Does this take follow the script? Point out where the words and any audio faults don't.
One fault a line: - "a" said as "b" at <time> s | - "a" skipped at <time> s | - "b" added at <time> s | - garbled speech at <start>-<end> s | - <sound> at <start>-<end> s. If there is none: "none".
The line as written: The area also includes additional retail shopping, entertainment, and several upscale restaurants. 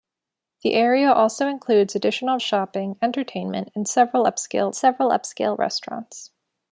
- "retail" skipped at 2.4 s
- "several upscale" added at 4.7 s